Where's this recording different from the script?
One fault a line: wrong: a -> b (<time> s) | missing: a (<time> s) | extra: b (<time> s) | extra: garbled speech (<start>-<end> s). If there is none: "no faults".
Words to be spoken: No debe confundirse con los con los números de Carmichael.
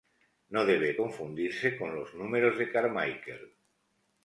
missing: con los (2.1 s)